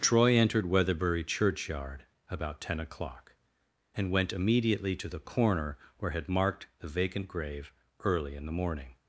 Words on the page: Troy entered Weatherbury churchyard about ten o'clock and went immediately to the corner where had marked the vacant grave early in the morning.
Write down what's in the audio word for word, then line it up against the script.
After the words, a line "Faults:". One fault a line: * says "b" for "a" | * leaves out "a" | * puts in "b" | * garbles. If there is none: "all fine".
Troy entered Weatherbury churchyard about ten o'clock and went immediately to the corner where had marked the vacant grave early in the morning.
Faults:
all fine